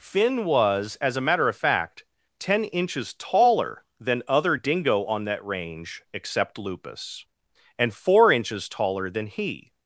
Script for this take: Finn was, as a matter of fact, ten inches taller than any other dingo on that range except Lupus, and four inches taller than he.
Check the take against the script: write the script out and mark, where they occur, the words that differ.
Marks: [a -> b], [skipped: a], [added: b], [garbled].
Finn was, as a matter of fact, ten inches taller than [skipped: any] other dingo on that range except Lupus, and four inches taller than he.